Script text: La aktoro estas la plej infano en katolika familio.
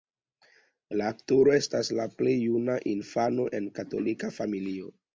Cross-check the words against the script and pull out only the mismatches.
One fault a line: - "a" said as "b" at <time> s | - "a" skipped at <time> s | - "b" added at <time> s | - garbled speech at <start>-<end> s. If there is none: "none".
- "juna" added at 2.4 s